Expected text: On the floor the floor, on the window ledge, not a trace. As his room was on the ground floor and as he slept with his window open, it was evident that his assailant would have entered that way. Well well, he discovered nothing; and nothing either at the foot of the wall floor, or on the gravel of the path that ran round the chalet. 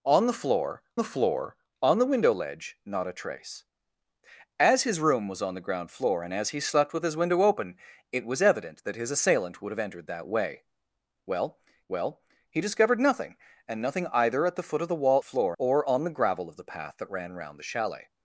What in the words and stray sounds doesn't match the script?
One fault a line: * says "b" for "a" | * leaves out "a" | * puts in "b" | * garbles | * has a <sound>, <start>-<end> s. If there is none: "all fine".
all fine